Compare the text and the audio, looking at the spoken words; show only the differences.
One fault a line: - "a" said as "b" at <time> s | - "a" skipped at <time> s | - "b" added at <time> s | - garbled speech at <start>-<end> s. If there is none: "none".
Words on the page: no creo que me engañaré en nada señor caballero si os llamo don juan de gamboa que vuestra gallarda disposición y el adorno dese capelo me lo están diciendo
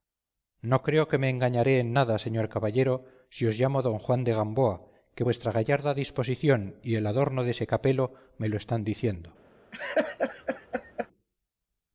none